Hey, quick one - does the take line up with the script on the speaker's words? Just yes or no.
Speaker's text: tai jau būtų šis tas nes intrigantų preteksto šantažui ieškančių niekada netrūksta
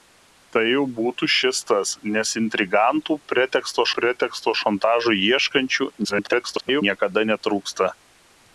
no